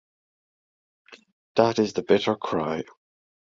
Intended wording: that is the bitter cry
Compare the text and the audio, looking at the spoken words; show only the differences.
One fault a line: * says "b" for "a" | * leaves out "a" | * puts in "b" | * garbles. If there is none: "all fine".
all fine